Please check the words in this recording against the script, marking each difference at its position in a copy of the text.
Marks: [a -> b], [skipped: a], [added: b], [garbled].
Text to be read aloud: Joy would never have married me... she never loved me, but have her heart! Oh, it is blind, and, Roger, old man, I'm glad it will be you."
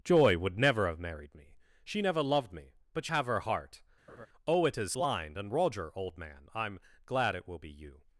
Joy would never have married me... she never loved me, but have her heart! Oh, it is blind, and, Roger, old man, I'm glad it will be you."